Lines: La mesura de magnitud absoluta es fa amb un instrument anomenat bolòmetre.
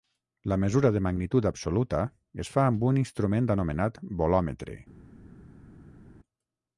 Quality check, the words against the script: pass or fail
pass